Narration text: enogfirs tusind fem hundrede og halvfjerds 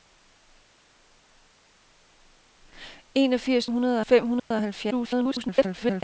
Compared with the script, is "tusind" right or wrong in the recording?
wrong